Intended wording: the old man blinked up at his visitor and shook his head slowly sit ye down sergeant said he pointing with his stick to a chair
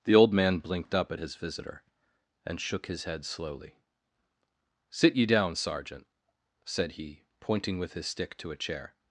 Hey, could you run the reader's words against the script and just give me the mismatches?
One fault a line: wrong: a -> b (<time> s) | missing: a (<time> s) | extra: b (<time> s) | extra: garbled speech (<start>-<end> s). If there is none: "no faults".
no faults